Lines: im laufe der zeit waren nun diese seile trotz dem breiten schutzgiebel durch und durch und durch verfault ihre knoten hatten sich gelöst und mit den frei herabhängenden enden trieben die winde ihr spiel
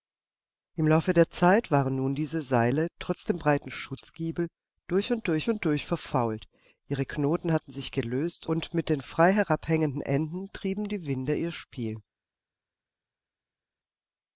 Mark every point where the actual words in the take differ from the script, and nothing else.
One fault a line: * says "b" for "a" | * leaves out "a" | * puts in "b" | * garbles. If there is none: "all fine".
all fine